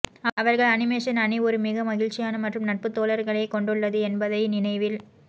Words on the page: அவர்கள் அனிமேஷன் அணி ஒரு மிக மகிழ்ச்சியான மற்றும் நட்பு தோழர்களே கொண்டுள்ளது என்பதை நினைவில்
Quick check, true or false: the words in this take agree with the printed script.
true